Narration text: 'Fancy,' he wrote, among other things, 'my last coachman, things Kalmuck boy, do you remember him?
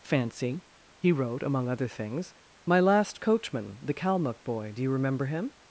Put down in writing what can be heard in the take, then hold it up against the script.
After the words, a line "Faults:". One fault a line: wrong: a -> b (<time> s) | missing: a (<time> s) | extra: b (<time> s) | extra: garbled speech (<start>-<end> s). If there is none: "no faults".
'Fancy,' he wrote, among other things, 'my last coachman, the Kalmuck boy, do you remember him?
Faults:
wrong: things -> the (3.8 s)